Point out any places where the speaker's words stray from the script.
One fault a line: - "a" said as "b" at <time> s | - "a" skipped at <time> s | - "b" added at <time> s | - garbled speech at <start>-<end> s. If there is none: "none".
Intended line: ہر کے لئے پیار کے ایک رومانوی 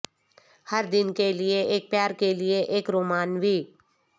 - "دن" added at 0.9 s
- "ایک" added at 1.7 s
- "لئے" added at 2.3 s